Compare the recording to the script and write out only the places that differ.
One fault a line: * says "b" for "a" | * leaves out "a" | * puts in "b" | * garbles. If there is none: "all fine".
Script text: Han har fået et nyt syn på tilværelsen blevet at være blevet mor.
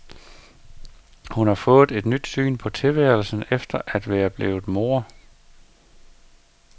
* says "Hun" for "Han"
* says "efter" for "blevet"